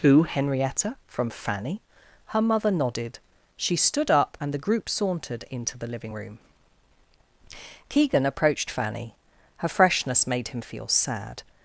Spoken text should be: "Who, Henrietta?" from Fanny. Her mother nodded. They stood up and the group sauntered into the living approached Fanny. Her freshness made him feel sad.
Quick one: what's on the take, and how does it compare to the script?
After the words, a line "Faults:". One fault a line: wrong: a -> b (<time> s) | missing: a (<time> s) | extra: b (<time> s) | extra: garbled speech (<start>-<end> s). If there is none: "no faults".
"Who, Henrietta?" from Fanny. Her mother nodded. She stood up and the group sauntered into the living room. Keegan approached Fanny. Her freshness made him feel sad.
Faults:
wrong: They -> She (3.6 s)
extra: room Keegan (6.1 s)